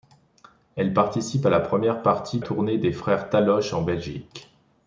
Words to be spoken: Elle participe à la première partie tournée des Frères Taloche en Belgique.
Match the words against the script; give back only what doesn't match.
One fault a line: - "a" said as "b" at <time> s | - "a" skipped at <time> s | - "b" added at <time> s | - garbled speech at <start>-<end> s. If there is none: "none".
none